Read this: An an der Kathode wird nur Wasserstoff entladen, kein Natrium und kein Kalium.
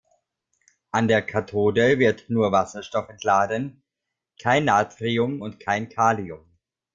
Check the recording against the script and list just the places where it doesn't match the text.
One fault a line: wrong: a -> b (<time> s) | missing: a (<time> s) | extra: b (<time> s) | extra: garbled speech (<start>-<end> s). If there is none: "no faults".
missing: an (1.1 s)